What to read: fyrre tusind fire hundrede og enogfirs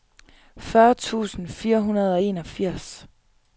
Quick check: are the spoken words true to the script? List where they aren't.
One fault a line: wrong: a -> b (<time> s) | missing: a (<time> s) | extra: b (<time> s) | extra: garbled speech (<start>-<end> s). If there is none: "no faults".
no faults